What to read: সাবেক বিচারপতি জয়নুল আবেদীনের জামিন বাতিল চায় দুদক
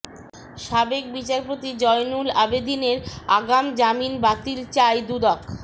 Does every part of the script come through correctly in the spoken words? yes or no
no